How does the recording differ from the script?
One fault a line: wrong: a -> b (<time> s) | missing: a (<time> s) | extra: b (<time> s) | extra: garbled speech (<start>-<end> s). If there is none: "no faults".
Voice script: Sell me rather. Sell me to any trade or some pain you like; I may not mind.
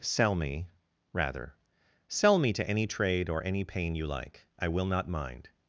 wrong: some -> any (3.4 s)
wrong: may -> will (4.7 s)